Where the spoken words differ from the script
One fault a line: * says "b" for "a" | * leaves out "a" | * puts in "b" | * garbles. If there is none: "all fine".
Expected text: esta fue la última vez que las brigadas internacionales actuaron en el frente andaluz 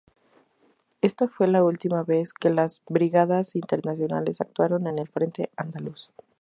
all fine